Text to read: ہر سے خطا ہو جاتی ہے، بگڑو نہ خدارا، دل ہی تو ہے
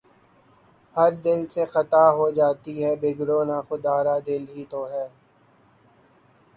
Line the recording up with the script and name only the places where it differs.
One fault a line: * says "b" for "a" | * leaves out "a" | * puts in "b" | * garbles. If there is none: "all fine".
* puts in "دل"